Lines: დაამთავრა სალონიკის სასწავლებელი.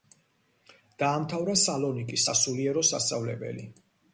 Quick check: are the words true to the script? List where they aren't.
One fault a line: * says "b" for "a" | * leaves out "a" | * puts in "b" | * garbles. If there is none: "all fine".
* puts in "სასულიერო"